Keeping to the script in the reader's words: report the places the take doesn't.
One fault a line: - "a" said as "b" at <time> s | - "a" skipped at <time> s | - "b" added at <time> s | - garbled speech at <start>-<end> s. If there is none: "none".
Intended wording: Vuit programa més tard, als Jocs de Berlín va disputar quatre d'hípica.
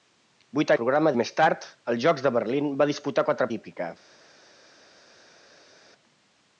none